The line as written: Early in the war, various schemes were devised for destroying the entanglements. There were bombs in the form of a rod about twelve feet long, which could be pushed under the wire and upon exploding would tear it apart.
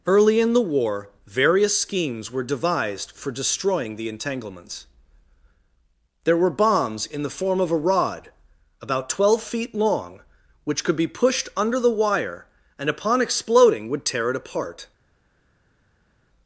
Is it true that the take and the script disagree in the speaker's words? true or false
false